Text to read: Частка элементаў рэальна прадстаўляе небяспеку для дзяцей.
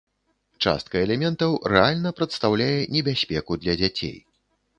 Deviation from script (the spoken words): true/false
false